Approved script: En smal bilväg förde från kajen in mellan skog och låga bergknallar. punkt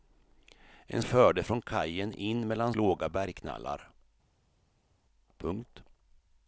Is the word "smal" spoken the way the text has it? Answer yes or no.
no